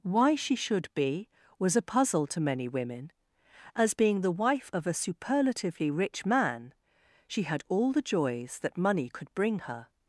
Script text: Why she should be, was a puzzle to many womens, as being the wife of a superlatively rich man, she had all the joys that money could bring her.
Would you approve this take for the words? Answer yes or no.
no